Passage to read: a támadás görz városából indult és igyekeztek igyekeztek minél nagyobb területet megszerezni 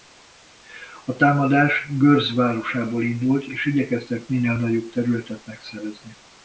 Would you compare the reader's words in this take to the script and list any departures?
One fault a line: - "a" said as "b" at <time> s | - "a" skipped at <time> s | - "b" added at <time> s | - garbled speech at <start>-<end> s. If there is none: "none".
- "igyekeztek" skipped at 4.3 s